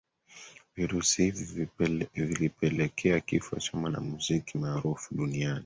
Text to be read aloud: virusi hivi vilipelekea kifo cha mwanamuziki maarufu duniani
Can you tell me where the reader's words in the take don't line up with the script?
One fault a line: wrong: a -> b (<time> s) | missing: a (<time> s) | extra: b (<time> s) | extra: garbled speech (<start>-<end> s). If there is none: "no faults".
no faults